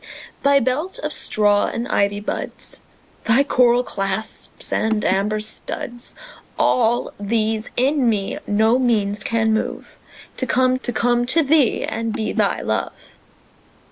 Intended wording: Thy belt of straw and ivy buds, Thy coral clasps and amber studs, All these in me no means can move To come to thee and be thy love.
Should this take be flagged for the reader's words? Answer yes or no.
yes